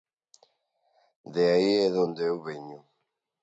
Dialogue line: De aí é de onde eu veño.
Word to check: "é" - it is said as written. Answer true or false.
true